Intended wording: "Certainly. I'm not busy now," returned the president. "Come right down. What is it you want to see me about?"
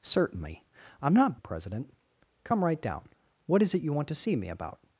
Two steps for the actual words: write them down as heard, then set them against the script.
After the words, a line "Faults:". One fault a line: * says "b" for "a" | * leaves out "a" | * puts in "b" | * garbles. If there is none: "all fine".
"Certainly. I'm not the president. "Come right down. What is it you want to see me about?"
Faults:
* leaves out "busy now returned"